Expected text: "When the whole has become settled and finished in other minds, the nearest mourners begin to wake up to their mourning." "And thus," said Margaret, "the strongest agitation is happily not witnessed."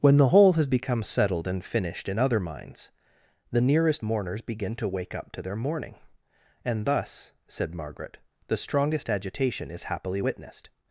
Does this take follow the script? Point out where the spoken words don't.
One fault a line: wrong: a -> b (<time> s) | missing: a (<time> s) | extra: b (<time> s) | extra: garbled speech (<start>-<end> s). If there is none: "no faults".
missing: not (10.2 s)